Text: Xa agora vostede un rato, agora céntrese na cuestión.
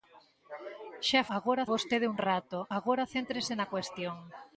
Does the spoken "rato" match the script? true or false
true